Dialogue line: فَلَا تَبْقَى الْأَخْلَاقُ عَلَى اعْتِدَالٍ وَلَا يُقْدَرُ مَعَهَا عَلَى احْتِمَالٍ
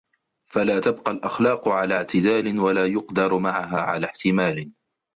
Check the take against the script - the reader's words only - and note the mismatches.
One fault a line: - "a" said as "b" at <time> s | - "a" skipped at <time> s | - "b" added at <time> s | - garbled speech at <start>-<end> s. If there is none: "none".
none